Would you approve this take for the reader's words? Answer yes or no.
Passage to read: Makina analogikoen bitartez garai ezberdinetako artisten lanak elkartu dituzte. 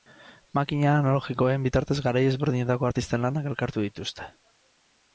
yes